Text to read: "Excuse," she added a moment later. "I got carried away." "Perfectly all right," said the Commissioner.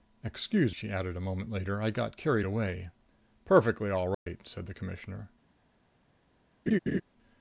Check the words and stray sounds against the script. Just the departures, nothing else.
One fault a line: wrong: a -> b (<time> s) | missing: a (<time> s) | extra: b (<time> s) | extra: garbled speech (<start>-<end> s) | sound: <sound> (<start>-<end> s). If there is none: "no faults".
sound: dropout (4.1-4.3 s)
sound: laugh (6.7-7.0 s)